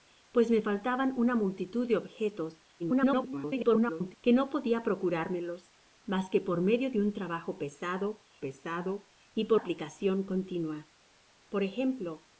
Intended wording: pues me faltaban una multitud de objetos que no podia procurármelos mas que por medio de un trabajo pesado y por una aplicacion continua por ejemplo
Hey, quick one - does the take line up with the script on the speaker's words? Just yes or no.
no